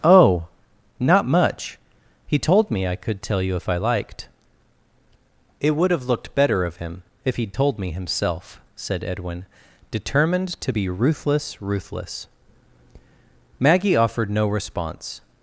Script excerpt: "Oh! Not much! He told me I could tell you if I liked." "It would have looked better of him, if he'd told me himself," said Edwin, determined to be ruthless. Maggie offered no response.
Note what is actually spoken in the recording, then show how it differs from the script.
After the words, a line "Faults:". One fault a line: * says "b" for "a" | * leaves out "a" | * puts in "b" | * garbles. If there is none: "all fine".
"Oh! Not much! He told me I could tell you if I liked." "It would have looked better of him, if he'd told me himself," said Edwin, determined to be ruthless ruthless. Maggie offered no response.
Faults:
* puts in "ruthless"